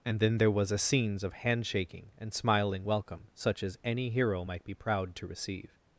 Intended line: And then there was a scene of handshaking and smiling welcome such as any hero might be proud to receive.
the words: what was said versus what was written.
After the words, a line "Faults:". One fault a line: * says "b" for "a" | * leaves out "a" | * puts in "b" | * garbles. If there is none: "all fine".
And then there was a scenes of handshaking and smiling welcome such as any hero might be proud to receive.
Faults:
* says "scenes" for "scene"